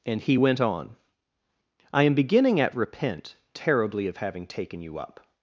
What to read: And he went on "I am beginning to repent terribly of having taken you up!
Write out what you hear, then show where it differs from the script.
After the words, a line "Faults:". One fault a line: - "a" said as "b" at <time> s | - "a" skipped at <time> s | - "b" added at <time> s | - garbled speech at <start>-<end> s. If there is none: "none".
And he went on "I am beginning at repent terribly of having taken you up!
Faults:
- "to" said as "at" at 2.6 s